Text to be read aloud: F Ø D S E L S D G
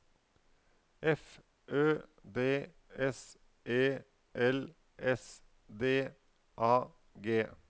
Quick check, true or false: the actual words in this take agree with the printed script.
false